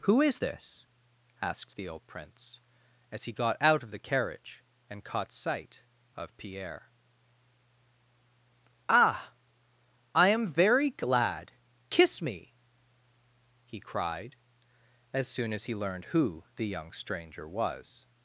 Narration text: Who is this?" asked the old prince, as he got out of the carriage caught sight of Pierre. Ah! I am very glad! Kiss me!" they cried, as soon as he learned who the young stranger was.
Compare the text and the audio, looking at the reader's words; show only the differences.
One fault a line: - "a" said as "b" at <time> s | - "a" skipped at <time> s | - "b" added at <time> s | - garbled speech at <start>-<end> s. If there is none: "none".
- "and" added at 4.9 s
- "they" said as "he" at 13.7 s